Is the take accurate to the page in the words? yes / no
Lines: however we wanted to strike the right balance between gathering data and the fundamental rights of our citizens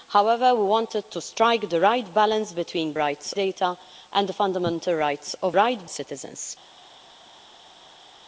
no